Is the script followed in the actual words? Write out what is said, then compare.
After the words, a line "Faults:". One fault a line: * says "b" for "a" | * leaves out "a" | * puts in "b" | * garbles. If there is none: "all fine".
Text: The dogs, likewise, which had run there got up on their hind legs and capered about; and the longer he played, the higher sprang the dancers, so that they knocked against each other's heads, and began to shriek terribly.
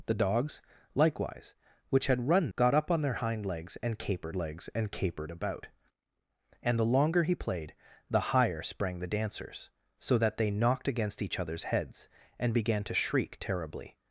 The dogs, likewise, which had run got up on their hind legs and capered legs and capered about; and the longer he played, the higher sprang the dancers, so that they knocked against each other's heads, and began to shriek terribly.
Faults:
* leaves out "there"
* puts in "legs and capered"